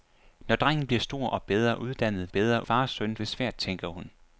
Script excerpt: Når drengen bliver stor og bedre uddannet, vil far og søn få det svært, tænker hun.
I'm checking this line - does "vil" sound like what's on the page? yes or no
no